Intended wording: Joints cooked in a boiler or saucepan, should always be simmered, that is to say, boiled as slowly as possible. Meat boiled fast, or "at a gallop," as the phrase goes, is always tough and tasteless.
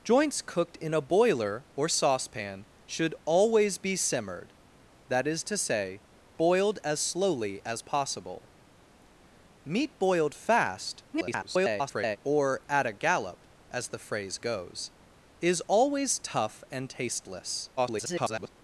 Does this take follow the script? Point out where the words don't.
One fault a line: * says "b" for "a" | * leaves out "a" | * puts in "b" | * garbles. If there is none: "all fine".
* garbles
* garbles